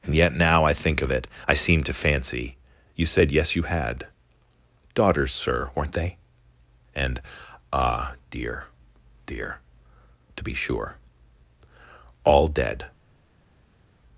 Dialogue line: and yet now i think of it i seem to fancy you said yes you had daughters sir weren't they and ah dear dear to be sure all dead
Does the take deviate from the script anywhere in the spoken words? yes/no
no